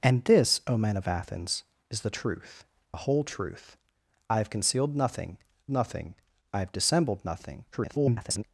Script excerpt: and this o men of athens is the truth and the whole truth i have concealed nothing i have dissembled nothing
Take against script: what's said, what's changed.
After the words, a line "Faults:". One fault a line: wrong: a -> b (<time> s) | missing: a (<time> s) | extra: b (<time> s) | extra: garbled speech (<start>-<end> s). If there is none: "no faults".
and this o men of athens is the truth the whole truth i have concealed nothing nothing i have dissembled nothing [garbled]
Faults:
missing: and (2.6 s)
extra: nothing (5.7 s)
extra: garbled speech (7.7-8.4 s)